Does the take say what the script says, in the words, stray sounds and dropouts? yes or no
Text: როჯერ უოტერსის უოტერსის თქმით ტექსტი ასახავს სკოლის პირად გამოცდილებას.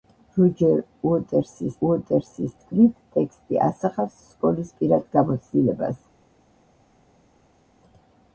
yes